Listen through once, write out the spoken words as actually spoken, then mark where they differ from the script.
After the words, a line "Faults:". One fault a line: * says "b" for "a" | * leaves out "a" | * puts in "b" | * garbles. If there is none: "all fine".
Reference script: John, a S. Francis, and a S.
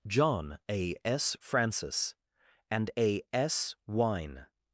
John, a S. Francis, and a S. wine
Faults:
* puts in "wine"